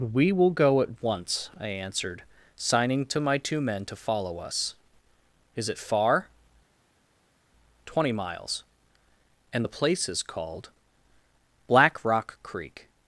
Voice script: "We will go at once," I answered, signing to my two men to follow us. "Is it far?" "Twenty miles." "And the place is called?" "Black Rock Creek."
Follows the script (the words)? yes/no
yes